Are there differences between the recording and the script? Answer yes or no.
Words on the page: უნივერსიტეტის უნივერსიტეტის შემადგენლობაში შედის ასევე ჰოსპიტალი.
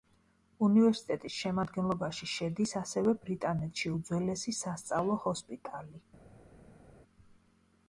yes